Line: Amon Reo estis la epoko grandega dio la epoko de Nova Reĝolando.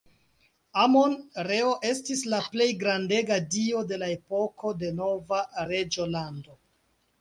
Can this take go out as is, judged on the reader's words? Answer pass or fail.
fail